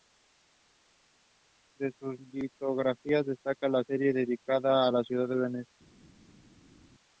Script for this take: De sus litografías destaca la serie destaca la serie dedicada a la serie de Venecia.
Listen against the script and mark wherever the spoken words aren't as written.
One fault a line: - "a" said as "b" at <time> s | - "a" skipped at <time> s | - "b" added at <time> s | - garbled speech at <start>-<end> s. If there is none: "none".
- "destaca la serie" skipped at 4.1 s
- "serie" said as "ciudad" at 5.0 s